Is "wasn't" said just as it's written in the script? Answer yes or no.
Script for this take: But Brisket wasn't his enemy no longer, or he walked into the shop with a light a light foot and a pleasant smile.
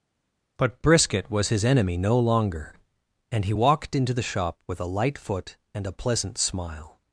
no